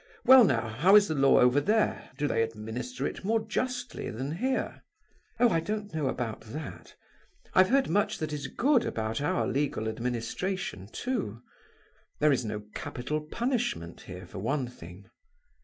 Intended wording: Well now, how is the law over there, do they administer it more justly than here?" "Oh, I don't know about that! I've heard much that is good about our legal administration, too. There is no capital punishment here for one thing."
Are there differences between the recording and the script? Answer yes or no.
no